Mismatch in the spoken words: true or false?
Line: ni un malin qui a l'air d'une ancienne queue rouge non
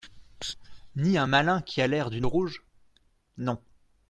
true